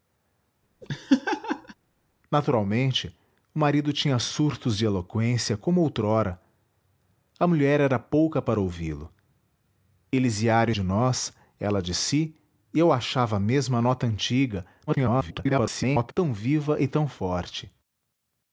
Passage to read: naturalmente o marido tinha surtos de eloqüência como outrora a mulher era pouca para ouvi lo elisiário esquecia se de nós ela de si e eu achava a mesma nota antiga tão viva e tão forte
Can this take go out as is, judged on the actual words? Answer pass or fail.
fail